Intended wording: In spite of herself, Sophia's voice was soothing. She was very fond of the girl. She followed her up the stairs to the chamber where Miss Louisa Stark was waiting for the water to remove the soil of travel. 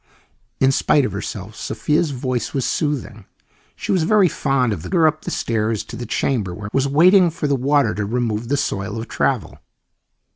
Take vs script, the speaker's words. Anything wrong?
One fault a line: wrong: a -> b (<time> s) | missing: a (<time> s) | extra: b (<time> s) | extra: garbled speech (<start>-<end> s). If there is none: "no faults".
missing: girl She followed (4.9 s)
missing: Miss Louisa Stark (6.7 s)